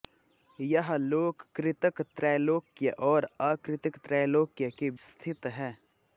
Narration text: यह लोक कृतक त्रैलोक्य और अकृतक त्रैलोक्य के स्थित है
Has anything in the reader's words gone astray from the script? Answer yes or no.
no